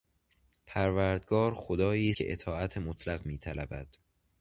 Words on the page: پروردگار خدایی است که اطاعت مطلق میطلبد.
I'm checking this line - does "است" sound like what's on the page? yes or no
no